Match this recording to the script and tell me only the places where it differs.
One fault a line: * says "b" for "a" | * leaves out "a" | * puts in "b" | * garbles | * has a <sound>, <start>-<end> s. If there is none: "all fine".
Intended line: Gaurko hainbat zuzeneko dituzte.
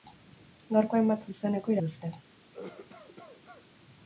* has a cough, 2.5-3.7 s